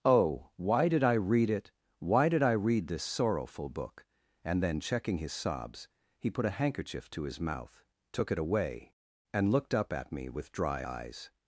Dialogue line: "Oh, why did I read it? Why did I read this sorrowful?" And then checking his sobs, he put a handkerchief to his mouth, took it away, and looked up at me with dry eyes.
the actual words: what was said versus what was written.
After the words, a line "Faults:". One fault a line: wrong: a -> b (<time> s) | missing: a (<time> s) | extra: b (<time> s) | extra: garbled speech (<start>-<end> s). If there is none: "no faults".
"Oh, why did I read it? Why did I read this sorrowful book?" And then checking his sobs, he put a handkerchief to his mouth, took it away, and looked up at me with dry eyes.
Faults:
extra: book (3.7 s)